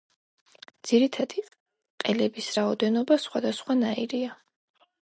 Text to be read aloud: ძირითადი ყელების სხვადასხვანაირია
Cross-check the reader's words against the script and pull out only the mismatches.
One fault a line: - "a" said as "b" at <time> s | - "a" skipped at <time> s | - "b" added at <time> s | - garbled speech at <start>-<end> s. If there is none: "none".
- "რაოდენობა" added at 2.6 s